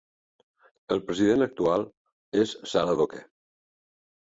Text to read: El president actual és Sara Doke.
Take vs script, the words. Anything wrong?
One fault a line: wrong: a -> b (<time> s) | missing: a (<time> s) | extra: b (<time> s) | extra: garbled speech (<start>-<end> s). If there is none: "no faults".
no faults